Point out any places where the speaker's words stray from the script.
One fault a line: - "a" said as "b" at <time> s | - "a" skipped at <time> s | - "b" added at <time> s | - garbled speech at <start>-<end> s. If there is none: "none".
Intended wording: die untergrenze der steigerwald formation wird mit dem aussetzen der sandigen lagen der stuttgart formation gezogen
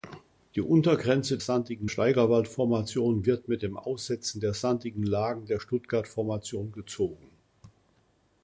- "der" said as "sandigen" at 1.4 s